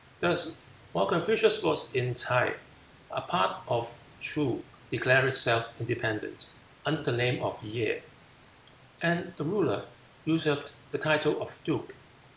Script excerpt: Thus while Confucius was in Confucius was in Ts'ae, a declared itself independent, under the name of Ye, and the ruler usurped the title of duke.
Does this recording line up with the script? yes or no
no